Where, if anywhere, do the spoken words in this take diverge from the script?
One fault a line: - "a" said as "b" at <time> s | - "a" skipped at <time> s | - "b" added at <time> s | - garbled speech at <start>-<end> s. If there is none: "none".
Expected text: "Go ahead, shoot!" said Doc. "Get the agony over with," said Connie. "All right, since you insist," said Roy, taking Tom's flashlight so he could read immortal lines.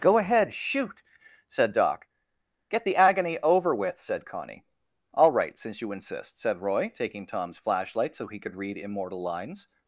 none